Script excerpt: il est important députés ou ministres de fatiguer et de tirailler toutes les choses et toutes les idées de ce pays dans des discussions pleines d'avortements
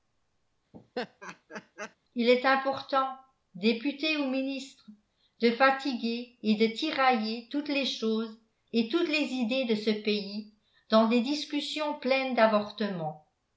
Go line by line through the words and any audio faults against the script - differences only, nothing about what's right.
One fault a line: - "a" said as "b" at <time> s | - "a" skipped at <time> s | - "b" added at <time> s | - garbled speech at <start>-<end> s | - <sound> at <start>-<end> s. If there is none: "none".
- laugh at 0.7-2.0 s